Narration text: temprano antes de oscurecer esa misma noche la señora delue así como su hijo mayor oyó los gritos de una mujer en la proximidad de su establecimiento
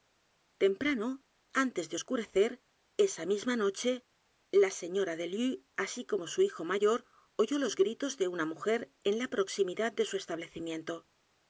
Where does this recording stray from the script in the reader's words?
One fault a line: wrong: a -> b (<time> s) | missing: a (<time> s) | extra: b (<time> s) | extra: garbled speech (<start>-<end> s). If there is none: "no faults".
no faults